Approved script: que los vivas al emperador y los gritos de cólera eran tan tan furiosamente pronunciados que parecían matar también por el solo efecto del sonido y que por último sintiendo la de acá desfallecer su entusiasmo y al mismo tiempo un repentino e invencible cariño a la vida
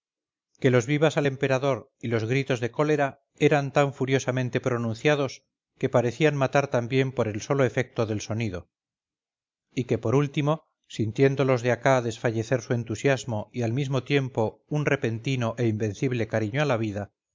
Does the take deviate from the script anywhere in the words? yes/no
yes